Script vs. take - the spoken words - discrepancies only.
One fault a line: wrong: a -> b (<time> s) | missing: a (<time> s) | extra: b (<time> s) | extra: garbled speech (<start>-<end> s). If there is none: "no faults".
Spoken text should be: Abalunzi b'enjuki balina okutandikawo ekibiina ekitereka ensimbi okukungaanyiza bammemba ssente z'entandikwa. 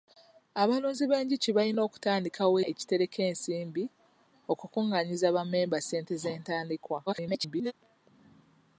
missing: ekibiina (2.5 s)
extra: garbled speech (7.1-7.7 s)